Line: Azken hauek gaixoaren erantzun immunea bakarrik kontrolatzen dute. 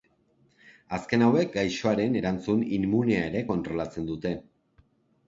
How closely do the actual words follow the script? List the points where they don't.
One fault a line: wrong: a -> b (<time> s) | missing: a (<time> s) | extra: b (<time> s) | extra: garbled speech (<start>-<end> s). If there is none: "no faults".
wrong: bakarrik -> ere (3.3 s)